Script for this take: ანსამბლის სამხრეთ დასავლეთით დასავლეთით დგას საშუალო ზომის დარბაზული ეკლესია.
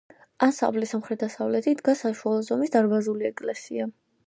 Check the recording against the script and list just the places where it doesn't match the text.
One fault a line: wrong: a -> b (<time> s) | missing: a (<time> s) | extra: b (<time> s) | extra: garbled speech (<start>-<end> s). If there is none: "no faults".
missing: დასავლეთით (1.8 s)